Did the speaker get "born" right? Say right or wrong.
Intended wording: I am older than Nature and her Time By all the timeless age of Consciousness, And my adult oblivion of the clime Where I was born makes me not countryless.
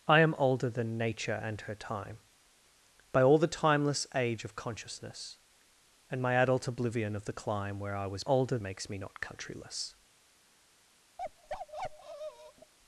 wrong